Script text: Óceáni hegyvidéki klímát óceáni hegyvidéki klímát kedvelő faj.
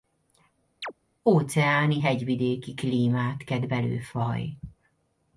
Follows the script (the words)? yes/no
no